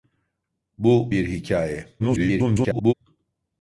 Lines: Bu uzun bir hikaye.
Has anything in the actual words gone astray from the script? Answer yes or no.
yes